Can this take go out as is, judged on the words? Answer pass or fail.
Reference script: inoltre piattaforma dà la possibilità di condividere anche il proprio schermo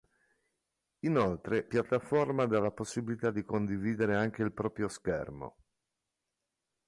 pass